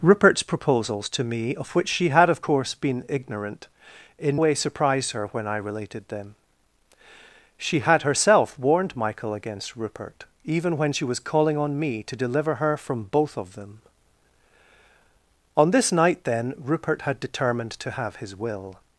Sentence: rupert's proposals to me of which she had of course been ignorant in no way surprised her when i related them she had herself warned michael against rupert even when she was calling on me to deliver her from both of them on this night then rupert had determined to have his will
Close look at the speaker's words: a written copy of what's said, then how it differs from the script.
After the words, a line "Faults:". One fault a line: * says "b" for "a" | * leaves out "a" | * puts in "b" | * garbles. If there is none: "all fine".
rupert's proposals to me of which she had of course been ignorant in way surprised her when i related them she had herself warned michael against rupert even when she was calling on me to deliver her from both of them on this night then rupert had determined to have his will
Faults:
* leaves out "no"